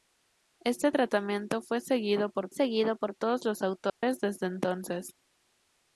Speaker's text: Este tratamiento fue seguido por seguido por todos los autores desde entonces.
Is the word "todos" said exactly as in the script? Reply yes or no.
yes